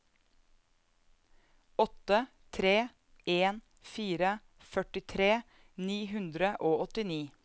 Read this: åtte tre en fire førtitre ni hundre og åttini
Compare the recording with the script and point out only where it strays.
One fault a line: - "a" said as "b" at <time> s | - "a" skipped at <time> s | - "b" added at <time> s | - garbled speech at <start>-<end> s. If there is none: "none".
none